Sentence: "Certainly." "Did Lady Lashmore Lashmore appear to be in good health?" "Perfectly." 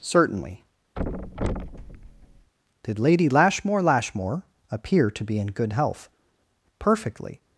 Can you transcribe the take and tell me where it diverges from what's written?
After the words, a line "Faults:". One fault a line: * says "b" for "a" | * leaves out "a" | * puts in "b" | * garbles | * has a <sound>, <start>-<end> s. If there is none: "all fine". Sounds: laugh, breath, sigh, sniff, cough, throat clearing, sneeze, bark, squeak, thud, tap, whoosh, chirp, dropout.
"Certainly." "Did Lady Lashmore Lashmore appear to be in good health?" "Perfectly."
Faults:
* has a thud, 1.0-2.5 s